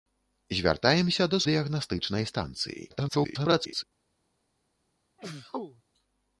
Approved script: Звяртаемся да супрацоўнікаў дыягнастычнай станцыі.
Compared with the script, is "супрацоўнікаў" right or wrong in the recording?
wrong